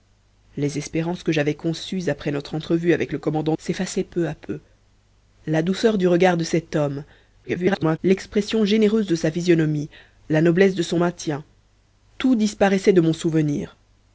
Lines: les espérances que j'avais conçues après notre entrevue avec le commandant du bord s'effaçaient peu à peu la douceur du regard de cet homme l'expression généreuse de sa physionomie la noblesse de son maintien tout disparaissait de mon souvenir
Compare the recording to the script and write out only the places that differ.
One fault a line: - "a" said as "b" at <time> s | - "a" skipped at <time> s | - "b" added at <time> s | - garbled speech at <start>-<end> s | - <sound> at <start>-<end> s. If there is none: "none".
- "du bord" skipped at 3.5 s
- garbled speech at 7.4-8.0 s